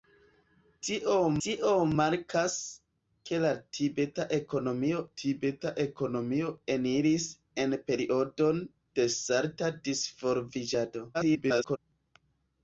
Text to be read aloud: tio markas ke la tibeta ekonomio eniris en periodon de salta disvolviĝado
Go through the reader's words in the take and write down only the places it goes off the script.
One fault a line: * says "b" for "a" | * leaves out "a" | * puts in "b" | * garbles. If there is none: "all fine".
* puts in "tio"
* puts in "tibeta ekonomio"
* garbles